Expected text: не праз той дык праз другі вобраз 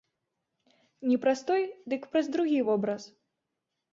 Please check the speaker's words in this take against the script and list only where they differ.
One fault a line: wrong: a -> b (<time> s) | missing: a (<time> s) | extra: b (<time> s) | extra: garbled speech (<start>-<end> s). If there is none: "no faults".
no faults